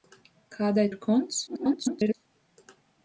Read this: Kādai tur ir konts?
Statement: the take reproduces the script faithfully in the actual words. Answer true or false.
false